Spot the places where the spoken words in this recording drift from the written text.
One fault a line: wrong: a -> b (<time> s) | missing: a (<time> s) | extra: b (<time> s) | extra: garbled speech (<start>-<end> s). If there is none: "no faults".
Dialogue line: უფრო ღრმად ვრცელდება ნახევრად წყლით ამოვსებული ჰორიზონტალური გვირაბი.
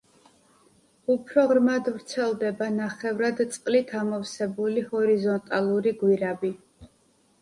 no faults